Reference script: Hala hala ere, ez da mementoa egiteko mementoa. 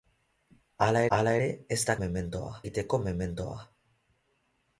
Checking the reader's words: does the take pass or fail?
pass